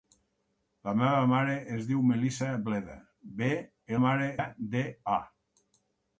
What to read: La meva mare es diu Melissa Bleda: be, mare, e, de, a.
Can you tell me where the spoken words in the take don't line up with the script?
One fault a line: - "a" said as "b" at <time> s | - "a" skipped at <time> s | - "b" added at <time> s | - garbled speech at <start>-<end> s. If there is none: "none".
none